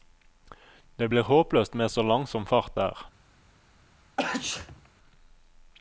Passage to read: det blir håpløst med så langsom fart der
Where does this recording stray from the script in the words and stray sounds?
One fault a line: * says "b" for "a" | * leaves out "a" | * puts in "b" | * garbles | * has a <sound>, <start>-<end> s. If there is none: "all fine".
* has a sneeze, 4.2-4.9 s